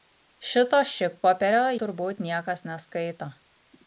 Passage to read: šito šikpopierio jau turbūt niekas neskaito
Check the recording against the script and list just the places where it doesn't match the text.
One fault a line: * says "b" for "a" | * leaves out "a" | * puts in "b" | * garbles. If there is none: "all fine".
* leaves out "jau"